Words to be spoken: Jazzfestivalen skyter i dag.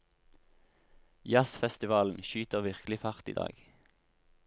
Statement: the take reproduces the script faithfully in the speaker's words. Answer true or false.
false